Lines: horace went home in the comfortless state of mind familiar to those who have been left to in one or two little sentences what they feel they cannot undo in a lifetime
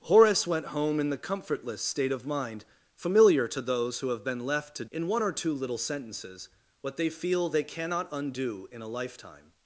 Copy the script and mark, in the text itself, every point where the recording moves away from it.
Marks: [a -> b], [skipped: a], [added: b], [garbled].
horace went home in the comfortless state of mind familiar to those who have been left to in one or two little sentences what they feel they cannot undo in a lifetime